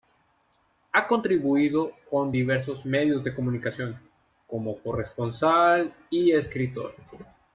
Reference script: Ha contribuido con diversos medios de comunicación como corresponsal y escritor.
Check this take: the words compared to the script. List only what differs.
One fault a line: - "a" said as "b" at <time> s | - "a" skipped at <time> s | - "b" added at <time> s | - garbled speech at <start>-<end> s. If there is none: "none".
none